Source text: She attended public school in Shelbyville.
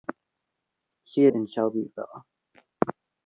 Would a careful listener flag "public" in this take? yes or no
yes